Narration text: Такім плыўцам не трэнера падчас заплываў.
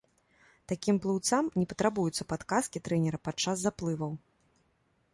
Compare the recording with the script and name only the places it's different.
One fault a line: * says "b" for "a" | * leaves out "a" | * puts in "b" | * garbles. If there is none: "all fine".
* puts in "патрабуюцца падказкі"